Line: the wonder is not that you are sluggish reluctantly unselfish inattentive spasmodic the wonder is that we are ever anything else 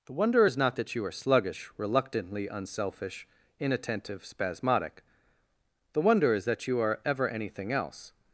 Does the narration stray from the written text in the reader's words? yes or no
yes